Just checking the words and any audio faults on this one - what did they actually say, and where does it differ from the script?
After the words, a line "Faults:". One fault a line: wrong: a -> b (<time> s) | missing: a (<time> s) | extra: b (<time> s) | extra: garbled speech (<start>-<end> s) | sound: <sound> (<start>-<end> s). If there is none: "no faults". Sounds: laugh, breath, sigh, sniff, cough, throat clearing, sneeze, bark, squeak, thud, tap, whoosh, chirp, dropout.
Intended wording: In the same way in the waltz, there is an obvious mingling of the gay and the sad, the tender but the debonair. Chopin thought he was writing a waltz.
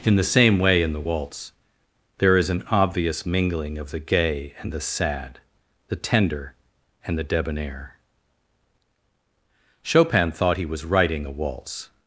In the same way in the waltz, there is an obvious mingling of the gay and the sad, the tender and the debonair. Chopin thought he was writing a waltz.
Faults:
wrong: but -> and (7.1 s)